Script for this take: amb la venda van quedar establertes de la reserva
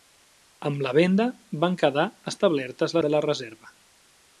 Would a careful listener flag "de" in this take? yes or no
no